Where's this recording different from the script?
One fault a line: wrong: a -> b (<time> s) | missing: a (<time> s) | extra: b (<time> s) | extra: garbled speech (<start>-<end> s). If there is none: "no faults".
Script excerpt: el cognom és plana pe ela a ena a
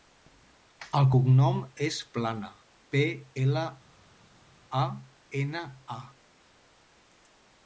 no faults